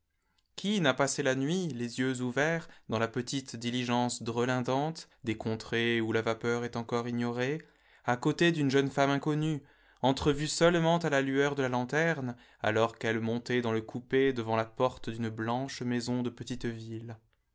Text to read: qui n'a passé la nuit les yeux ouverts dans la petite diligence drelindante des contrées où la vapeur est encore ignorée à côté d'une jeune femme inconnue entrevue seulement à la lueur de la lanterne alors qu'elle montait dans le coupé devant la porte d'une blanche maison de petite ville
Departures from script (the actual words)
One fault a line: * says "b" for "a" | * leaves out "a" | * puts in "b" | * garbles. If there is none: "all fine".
all fine